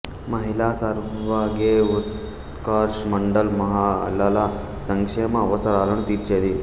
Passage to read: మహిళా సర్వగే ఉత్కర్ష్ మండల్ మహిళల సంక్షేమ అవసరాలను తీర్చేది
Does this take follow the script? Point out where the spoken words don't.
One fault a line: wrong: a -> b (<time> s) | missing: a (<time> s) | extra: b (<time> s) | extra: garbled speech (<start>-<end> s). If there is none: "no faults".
no faults